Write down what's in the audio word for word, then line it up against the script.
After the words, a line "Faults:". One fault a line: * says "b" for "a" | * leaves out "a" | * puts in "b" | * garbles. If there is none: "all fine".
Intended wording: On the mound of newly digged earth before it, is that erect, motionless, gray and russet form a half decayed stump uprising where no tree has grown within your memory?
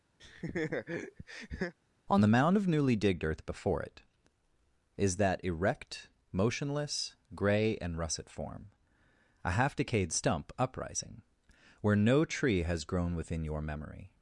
On the mound of newly digged earth before it, is that erect, motionless, gray and russet form a half decayed stump uprising where no tree has grown within your memory?
Faults:
all fine